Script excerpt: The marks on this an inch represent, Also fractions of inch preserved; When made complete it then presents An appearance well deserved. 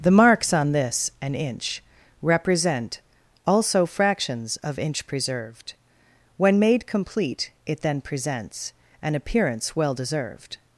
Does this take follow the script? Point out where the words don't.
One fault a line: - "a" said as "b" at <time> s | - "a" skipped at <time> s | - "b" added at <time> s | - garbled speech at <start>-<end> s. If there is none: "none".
none